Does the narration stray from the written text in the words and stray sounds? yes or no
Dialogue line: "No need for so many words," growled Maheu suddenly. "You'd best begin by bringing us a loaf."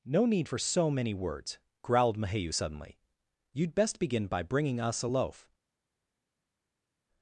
no